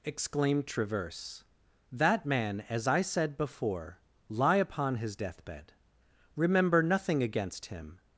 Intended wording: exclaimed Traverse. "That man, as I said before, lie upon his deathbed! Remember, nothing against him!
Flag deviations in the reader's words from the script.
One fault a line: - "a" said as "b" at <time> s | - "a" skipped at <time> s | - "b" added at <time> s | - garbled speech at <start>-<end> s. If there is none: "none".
none